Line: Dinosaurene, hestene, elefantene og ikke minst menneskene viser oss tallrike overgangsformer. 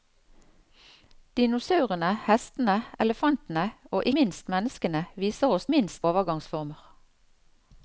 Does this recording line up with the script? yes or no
no